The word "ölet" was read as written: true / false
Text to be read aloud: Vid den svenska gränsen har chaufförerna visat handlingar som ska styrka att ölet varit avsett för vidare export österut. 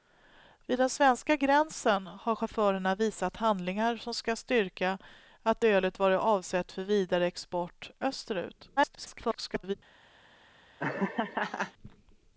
true